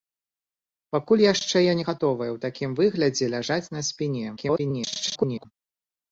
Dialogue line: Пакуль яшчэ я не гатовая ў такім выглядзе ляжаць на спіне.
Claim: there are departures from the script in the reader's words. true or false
true